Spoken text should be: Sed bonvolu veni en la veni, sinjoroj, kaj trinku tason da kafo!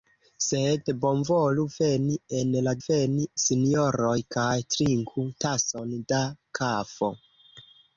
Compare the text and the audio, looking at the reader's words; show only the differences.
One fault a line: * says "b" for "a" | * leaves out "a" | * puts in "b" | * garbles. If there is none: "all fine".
all fine